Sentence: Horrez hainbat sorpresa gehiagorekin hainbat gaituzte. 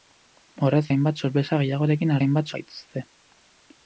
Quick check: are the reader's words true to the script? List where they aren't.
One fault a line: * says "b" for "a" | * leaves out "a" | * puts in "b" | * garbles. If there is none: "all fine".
all fine